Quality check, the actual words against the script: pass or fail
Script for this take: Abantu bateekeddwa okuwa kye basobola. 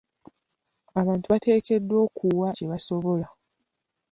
pass